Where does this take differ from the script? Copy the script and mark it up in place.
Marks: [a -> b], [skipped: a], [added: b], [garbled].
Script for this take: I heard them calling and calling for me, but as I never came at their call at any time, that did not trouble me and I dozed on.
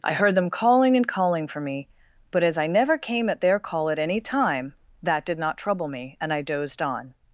I heard them calling and calling for me, but as I never came at their call at any time, that did not trouble me and I dozed on.